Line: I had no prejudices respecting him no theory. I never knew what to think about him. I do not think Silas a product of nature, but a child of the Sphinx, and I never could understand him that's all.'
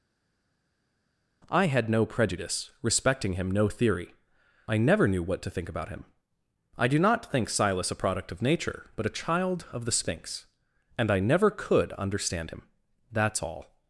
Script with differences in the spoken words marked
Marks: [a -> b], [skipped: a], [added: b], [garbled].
I had no [prejudices -> prejudice] respecting him no theory. I never knew what to think about him. I do not think Silas a product of nature, but a child of the Sphinx, and I never could understand him that's all.'